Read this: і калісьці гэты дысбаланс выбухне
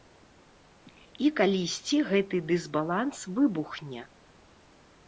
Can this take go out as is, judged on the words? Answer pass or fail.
pass